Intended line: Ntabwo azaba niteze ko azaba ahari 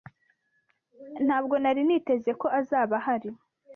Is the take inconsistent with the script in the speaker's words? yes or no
yes